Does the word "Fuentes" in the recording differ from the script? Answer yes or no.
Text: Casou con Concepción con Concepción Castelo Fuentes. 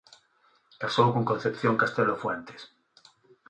no